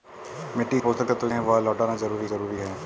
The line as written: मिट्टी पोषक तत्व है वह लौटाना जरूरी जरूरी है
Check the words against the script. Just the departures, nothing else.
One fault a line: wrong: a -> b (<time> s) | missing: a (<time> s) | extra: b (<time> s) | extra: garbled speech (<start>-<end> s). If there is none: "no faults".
no faults